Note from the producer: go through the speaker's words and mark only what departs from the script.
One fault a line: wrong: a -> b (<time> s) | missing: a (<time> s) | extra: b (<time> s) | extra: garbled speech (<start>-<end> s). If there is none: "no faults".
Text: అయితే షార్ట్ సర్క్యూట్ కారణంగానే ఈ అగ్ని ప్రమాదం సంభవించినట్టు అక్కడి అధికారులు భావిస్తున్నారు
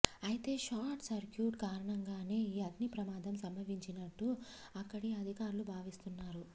no faults